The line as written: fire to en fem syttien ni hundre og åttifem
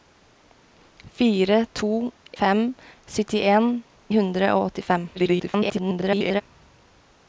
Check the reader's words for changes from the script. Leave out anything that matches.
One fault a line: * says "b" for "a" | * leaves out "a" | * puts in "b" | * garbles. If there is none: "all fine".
* leaves out "en"
* leaves out "ni"
* garbles